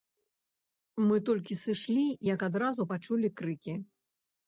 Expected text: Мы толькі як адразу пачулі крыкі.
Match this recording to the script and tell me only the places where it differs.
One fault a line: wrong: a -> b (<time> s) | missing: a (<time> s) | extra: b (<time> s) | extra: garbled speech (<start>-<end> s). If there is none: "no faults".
extra: сышлі (1.6 s)